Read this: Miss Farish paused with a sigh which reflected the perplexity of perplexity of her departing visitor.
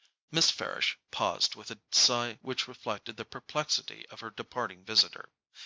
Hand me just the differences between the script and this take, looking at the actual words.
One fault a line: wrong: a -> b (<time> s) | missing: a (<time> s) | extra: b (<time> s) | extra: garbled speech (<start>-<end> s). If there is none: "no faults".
missing: perplexity of (4.2 s)